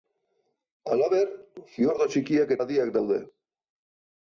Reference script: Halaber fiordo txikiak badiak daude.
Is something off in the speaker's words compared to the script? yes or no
no